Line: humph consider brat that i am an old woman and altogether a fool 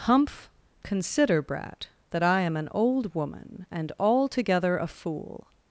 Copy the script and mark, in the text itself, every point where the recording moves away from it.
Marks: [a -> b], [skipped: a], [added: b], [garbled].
humph consider brat that i am an old woman and altogether a fool